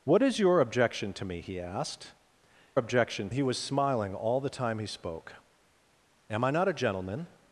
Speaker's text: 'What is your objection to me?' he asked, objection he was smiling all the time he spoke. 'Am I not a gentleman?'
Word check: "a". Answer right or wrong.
right